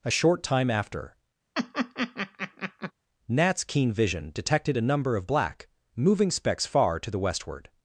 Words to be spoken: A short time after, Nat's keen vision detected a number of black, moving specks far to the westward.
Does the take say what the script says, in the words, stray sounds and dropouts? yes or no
no